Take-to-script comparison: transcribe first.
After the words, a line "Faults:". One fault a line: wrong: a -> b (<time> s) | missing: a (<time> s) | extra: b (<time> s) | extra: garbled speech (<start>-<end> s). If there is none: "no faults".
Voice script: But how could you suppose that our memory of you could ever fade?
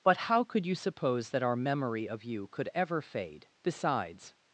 But how could you suppose that our memory of you could ever fade? Besides
Faults:
extra: Besides (3.6 s)